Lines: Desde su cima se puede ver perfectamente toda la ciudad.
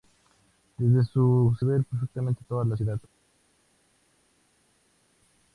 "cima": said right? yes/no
no